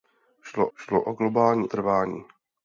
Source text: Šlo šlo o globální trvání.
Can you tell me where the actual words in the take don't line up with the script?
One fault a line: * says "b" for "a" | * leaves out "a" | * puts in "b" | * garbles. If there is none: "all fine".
all fine